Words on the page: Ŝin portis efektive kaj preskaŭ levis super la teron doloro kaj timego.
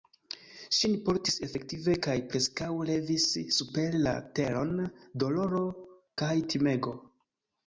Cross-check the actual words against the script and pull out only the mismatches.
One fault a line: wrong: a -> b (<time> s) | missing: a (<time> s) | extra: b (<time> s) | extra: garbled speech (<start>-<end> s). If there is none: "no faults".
no faults